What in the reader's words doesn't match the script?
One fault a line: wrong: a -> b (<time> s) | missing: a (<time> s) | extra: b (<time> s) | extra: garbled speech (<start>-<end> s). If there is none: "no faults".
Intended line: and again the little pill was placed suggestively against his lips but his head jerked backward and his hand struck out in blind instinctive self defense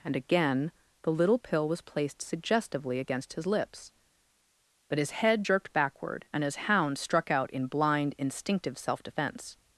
wrong: hand -> hound (6.7 s)